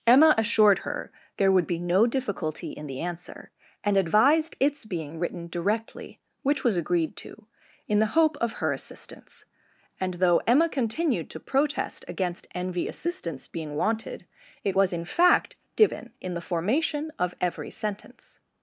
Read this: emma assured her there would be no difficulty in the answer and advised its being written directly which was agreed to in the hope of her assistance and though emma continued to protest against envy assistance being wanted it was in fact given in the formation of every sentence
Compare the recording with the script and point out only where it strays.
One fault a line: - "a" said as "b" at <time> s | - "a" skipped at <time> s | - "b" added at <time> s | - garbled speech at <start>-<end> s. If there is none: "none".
none